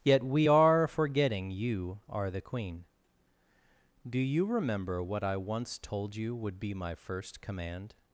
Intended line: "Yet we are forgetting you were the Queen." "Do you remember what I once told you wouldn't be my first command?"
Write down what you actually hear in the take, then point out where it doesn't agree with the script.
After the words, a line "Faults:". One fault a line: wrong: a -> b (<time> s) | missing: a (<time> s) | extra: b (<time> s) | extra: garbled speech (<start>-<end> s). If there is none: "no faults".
"Yet we are forgetting you are the Queen." "Do you remember what I once told you would be my first command?"
Faults:
wrong: were -> are (2.1 s)
wrong: wouldn't -> would (6.3 s)